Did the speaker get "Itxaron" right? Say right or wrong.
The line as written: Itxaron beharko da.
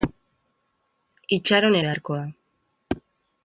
right